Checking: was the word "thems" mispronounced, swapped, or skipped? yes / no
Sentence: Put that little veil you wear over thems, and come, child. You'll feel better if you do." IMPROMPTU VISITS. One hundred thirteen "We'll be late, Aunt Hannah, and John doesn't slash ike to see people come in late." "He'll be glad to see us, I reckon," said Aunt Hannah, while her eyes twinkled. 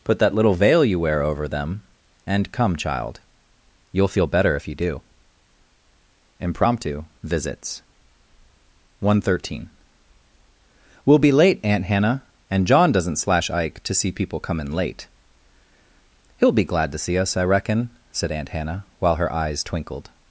yes